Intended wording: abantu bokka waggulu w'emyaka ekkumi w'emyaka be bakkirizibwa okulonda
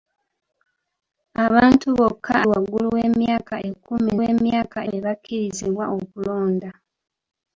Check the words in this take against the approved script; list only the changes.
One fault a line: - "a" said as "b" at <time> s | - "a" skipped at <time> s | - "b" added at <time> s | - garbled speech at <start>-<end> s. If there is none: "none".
none